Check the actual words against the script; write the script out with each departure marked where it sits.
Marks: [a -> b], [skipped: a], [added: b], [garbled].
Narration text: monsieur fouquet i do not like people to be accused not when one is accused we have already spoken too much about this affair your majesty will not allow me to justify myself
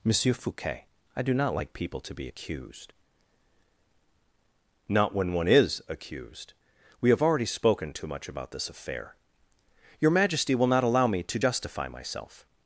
monsieur fouquet i do not like people to be accused not when one is accused we have already spoken too much about this affair your majesty will not allow me to justify myself